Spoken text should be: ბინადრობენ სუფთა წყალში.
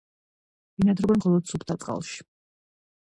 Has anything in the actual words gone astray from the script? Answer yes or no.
yes